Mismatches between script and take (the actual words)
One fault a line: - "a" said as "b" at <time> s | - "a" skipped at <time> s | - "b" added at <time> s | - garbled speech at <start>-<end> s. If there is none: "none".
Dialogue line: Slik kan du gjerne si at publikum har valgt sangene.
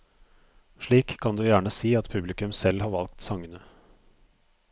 - "selv" added at 2.5 s